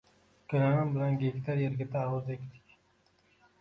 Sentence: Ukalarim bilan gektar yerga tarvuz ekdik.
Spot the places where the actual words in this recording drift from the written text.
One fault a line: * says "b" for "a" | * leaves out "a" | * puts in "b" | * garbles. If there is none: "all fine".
all fine